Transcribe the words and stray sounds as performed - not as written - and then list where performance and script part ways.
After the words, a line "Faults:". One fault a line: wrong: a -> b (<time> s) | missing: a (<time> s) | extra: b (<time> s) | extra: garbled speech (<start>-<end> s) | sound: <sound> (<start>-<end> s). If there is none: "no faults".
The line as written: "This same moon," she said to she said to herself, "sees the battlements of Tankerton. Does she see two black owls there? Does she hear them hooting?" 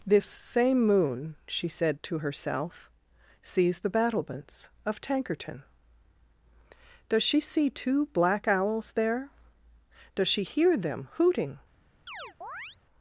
"This same moon," she said to herself, "sees the battlements of Tankerton. Does she see two black owls there? Does she hear them hooting?"
Faults:
missing: she said to (2.2 s)
sound: chirp (12.1-12.8 s)